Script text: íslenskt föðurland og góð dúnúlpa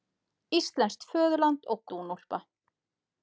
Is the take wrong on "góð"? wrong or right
wrong